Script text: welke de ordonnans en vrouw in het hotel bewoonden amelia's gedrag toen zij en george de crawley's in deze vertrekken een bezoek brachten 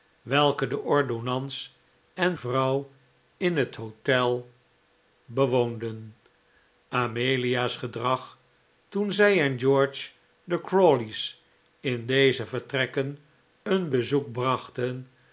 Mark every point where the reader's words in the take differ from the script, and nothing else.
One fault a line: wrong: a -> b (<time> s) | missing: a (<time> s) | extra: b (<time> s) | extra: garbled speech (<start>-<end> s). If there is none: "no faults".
no faults